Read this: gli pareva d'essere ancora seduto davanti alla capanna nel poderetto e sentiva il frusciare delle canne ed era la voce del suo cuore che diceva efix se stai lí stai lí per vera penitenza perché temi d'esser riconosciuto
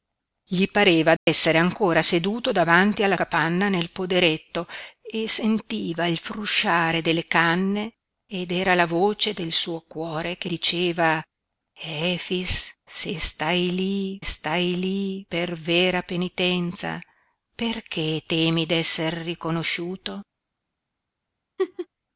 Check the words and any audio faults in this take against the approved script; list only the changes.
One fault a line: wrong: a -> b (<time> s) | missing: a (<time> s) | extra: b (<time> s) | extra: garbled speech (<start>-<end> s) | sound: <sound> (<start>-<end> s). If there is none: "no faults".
sound: dropout (1.2-1.3 s)
sound: laugh (21.6-21.9 s)